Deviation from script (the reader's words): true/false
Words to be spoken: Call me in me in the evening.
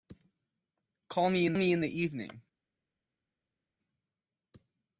false